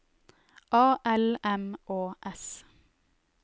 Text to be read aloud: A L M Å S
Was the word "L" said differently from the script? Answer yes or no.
no